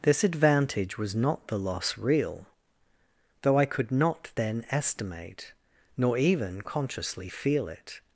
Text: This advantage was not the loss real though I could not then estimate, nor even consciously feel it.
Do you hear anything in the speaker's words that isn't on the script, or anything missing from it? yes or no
no